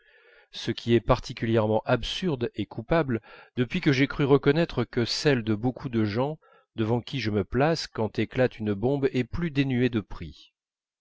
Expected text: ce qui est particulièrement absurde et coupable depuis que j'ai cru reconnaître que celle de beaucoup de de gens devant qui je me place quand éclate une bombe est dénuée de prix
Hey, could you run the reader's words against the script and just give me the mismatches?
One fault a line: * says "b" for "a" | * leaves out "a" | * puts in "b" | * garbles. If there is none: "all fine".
* leaves out "de"
* puts in "plus"